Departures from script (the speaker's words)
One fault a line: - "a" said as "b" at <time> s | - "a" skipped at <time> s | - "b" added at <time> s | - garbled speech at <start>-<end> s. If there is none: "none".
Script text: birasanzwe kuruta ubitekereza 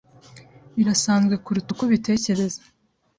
- "uko" added at 1.7 s